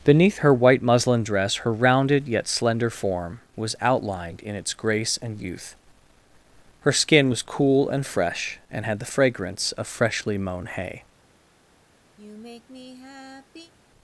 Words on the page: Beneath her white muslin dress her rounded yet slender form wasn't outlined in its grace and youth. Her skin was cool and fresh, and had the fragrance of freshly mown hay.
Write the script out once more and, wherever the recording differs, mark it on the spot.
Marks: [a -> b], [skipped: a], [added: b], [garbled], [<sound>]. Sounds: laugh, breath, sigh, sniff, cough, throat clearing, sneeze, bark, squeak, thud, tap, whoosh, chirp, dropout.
Beneath her white muslin dress her rounded yet slender form [wasn't -> was] outlined in its grace and youth. Her skin was cool and fresh, and had the fragrance of freshly mown hay. [sigh]